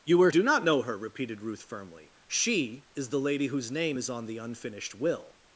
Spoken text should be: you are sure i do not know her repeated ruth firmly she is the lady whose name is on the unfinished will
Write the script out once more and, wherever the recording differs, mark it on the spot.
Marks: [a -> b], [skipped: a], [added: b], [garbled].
you are [skipped: sure i] do not know her repeated ruth firmly she is the lady whose name is on the unfinished will